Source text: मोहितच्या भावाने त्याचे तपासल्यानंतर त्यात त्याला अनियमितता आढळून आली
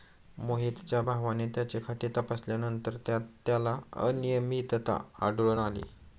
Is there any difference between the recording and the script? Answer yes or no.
yes